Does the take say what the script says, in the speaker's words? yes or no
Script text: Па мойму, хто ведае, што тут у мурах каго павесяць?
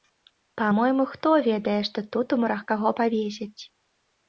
yes